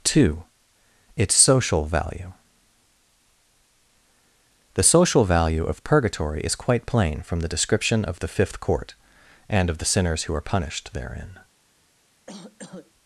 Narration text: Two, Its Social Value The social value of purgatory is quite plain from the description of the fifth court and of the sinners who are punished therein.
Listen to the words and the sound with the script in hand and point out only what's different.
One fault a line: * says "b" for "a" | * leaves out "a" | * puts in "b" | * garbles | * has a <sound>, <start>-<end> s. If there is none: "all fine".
* has a cough, 12.3-12.9 s